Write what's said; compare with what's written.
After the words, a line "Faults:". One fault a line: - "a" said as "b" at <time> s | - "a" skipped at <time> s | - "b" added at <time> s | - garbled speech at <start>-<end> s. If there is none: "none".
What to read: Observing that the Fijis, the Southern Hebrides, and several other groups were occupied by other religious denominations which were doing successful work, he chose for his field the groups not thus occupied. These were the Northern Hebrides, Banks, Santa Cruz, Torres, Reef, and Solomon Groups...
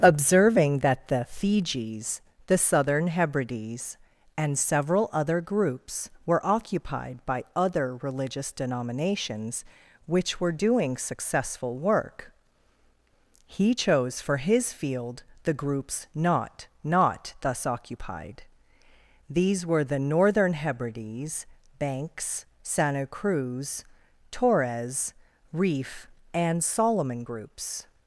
Observing that the Fijis, the Southern Hebrides, and several other groups were occupied by other religious denominations which were doing successful work, he chose for his field the groups not not thus occupied. These were the Northern Hebrides, Banks, Santa Cruz, Torres, Reef, and Solomon Groups...
Faults:
- "not" added at 16.8 s